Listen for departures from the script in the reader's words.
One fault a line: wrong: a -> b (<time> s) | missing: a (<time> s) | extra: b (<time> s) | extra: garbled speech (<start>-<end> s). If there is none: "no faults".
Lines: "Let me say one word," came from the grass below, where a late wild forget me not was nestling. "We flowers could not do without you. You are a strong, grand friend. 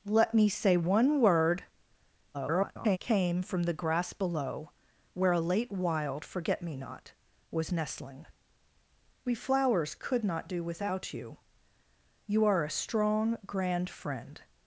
extra: garbled speech (2.3-3.0 s)